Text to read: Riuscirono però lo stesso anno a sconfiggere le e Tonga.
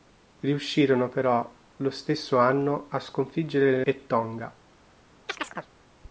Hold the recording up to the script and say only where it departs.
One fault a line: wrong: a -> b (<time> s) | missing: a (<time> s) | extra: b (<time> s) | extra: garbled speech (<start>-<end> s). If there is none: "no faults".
no faults